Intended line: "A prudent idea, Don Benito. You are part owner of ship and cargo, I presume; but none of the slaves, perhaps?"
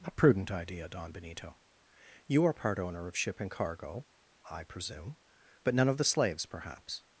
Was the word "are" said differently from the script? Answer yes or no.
no